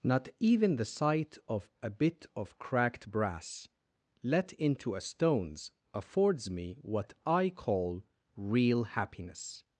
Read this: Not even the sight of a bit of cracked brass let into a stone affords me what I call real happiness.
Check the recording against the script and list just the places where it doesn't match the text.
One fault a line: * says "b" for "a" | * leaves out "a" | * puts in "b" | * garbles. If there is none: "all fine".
* says "stones" for "stone"